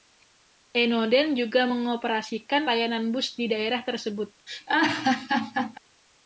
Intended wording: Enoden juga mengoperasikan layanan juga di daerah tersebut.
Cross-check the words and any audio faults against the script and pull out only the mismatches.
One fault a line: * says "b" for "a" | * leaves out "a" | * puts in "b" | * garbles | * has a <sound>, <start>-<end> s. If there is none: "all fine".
* says "bus" for "juga"
* has a laugh, 4.5-5.8 s